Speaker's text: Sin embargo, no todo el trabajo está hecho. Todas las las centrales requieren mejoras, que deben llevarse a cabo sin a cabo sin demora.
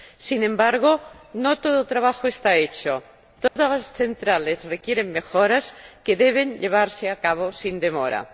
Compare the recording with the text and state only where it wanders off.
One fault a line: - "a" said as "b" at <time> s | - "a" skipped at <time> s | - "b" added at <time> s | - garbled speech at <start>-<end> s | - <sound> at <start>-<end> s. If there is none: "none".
- dropout at 3.5-3.6 s
- "las" skipped at 3.9 s
- "a cabo sin" skipped at 7.8 s